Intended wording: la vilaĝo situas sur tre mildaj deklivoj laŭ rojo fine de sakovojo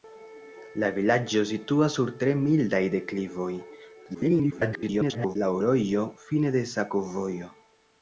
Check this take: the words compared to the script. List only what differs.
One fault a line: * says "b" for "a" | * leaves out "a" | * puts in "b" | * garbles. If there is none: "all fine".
* garbles